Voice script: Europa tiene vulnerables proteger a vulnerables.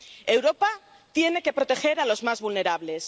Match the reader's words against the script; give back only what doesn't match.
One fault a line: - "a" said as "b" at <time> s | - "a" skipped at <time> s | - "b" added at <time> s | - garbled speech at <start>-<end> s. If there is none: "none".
- "vulnerables" said as "que" at 1.4 s
- "los más" added at 2.0 s